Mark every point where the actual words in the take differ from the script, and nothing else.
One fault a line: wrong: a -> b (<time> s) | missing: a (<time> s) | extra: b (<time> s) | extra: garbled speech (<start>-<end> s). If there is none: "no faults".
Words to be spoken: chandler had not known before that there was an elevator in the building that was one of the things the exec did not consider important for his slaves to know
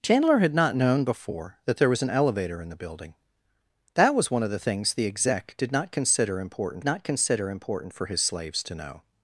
extra: not consider important (6.8 s)